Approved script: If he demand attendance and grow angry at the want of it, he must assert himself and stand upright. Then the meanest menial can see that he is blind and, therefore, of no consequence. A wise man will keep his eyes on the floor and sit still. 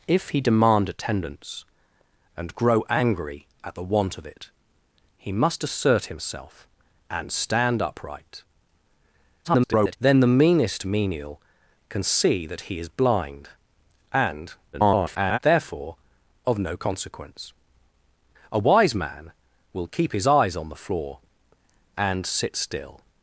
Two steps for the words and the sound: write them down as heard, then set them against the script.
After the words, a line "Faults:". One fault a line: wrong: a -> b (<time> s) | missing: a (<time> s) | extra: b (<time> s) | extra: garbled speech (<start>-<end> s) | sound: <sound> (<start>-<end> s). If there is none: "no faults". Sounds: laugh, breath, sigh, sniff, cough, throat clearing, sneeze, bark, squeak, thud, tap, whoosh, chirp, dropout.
If he demand attendance and grow angry at the want of it, he must assert himself and stand upright. [garbled] Then the meanest menial can see that he is blind and, [garbled] therefore, of no consequence. A wise man will keep his eyes on the floor and sit still.
Faults:
extra: garbled speech (9.4-10.0 s)
extra: garbled speech (14.7-15.4 s)